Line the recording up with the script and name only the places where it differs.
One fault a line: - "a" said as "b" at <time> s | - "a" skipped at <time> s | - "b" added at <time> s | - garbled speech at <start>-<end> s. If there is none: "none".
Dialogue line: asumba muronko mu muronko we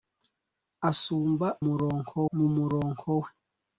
none